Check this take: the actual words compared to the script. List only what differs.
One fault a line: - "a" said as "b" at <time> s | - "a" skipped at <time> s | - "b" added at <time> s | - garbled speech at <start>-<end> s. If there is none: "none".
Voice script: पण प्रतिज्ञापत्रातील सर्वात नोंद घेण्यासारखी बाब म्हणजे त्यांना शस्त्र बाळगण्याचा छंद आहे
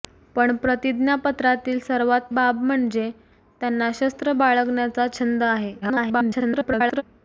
- "नोंद घेण्यासारखी" skipped at 2.3 s
- garbled speech at 5.8-7.0 s